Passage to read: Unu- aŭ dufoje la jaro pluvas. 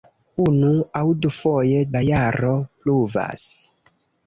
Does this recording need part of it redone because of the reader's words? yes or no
no